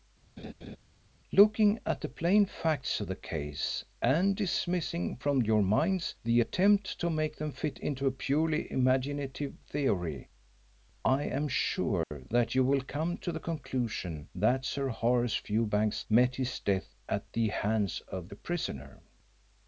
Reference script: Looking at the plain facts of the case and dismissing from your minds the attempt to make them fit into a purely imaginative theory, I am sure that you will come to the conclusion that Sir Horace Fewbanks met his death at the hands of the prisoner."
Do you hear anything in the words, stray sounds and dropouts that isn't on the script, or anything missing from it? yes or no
yes